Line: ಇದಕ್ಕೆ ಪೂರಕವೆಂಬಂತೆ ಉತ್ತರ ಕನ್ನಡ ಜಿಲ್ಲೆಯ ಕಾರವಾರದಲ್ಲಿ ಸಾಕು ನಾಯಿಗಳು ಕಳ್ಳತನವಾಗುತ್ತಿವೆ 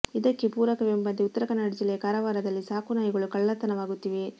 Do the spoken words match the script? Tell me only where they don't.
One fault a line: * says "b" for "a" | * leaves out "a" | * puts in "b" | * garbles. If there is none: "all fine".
all fine